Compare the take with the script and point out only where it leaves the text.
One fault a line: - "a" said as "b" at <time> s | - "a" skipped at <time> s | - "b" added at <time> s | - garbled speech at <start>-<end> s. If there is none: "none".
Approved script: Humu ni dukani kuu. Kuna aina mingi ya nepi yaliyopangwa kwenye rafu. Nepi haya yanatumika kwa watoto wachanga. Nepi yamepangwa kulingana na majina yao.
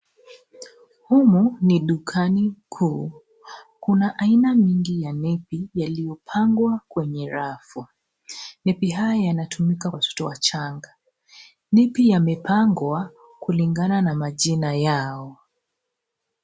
- "kwa" skipped at 9.9 s